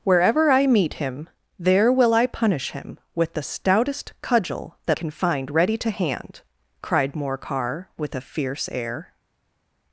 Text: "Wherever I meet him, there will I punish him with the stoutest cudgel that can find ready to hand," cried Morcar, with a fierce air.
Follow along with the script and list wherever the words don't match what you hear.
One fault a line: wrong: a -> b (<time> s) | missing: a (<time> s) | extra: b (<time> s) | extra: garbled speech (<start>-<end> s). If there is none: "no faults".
no faults